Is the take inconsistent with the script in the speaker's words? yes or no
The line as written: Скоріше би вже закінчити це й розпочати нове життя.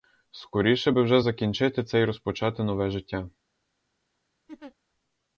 no